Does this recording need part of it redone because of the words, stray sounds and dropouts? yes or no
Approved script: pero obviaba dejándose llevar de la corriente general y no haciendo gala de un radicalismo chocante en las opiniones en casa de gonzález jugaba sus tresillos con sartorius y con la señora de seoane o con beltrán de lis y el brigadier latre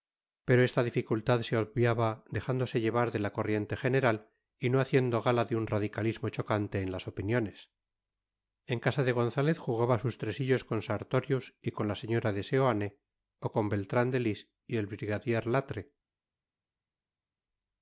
yes